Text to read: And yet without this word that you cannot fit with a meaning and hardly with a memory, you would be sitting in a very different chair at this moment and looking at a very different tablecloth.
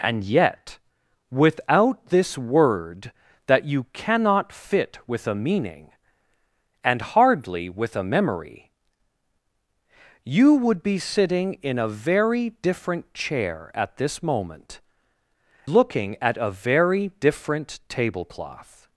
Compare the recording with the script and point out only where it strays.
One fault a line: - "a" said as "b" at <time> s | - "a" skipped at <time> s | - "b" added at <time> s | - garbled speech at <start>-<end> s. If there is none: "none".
- "and" skipped at 14.8 s